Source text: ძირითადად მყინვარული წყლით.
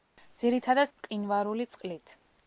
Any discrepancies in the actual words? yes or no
no